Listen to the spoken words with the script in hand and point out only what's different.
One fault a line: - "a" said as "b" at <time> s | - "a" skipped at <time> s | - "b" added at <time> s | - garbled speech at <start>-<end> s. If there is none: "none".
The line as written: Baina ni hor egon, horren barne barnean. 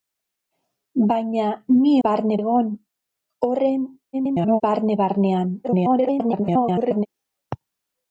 - "hor" said as "barne" at 2.1 s
- garbled speech at 4.1-4.6 s
- garbled speech at 5.6-7.1 s